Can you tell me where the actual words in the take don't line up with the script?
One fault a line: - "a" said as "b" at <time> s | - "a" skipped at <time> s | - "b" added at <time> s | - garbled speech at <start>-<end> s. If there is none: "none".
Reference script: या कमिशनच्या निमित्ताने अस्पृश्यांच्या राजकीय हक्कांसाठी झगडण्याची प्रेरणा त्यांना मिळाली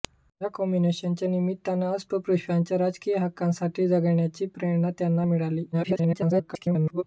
- garbled speech at 5.7-7.0 s